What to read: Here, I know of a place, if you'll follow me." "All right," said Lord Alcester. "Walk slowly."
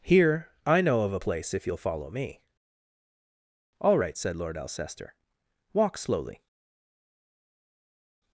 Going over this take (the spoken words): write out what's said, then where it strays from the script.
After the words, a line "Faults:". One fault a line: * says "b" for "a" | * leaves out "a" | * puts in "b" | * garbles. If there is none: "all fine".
Here, I know of a place, if you'll follow me." "All right," said Lord Alcester. "Walk slowly."
Faults:
all fine